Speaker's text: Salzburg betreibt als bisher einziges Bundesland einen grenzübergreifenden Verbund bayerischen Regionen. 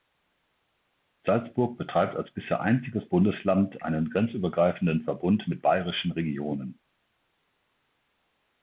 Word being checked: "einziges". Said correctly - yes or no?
yes